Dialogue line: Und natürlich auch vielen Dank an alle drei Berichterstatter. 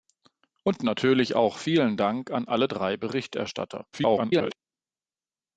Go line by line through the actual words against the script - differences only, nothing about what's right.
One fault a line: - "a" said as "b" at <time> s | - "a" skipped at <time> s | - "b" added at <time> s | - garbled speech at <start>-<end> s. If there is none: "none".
- garbled speech at 3.9-4.6 s